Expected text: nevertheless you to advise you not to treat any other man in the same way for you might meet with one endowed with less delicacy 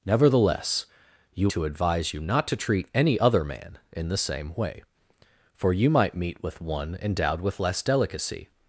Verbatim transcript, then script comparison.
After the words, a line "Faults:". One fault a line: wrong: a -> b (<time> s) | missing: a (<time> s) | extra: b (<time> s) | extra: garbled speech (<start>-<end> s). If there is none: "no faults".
nevertheless you to advise you not to treat any other man in the same way for you might meet with one endowed with less delicacy
Faults:
no faults